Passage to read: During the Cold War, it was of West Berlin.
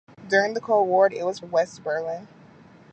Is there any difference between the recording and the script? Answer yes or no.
no